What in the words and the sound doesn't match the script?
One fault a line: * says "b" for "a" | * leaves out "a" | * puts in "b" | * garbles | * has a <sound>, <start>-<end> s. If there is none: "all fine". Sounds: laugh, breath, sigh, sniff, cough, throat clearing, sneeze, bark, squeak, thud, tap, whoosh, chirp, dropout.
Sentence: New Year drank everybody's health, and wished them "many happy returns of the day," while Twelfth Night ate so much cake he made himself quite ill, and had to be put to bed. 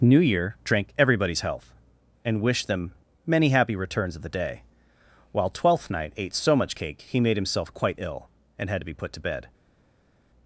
all fine